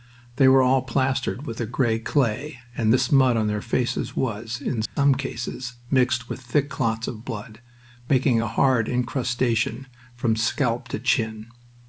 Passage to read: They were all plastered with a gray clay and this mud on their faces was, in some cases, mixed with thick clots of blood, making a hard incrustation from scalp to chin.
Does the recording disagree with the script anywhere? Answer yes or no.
no